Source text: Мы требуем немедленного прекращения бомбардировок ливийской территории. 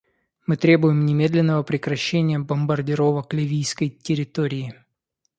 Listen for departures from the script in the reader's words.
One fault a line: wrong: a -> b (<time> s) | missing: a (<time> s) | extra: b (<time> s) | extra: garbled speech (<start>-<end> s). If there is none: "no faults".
no faults